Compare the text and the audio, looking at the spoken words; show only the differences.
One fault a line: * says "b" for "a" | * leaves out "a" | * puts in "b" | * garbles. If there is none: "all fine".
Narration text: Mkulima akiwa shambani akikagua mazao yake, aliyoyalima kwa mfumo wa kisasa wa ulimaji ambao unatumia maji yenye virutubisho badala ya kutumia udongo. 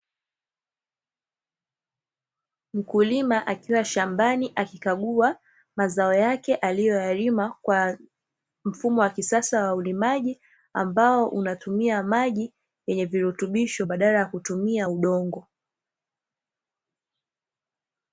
all fine